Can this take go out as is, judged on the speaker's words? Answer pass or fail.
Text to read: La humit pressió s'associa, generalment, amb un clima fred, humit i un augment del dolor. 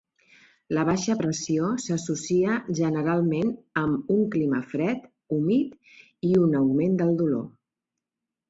fail